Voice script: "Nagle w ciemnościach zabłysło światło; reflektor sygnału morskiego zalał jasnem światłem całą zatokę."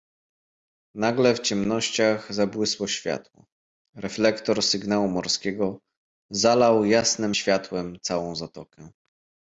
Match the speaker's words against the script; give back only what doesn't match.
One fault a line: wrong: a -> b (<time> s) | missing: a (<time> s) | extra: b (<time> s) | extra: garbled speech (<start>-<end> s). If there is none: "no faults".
no faults